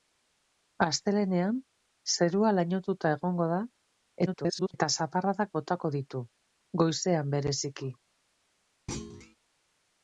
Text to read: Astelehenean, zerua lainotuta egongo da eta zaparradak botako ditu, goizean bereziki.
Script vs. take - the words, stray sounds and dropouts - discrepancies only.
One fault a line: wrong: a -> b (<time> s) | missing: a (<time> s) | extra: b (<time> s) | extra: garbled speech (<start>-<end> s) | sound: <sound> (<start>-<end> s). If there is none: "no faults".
extra: garbled speech (4.3-4.7 s)
sound: thud (8.9-9.4 s)